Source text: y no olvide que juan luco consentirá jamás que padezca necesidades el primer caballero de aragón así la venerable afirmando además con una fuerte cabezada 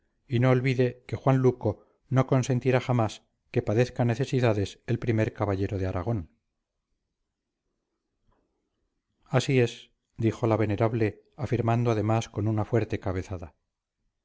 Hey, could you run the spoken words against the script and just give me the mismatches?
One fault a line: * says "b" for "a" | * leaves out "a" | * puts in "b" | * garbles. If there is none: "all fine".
* puts in "no"
* puts in "es dijo"